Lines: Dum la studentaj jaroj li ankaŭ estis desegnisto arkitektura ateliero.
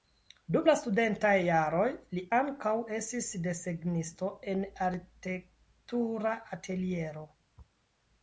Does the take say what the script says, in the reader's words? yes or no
no